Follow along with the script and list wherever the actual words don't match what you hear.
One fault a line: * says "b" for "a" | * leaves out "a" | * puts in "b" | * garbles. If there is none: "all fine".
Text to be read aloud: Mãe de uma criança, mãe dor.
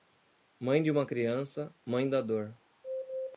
* puts in "da"